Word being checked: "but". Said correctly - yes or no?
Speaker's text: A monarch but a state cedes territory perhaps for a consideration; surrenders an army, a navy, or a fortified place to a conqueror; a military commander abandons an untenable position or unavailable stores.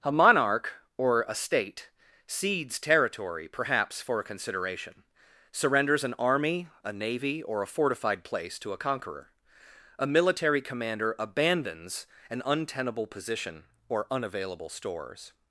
no